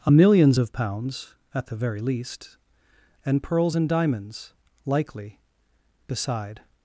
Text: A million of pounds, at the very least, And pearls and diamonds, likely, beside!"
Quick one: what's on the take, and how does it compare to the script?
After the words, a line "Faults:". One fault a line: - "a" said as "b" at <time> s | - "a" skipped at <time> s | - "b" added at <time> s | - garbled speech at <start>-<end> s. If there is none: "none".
A millions of pounds, at the very least, And pearls and diamonds, likely, beside!"
Faults:
- "million" said as "millions" at 0.1 s